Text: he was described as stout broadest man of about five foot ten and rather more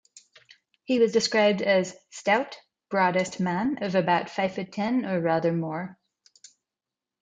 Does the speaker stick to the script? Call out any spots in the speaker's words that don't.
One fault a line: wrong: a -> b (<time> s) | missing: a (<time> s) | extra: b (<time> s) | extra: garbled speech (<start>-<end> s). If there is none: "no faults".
wrong: and -> or (5.0 s)